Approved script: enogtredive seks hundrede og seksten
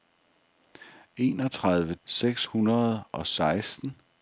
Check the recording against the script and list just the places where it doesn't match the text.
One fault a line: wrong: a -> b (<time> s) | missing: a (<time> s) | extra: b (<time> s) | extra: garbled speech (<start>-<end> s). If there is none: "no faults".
no faults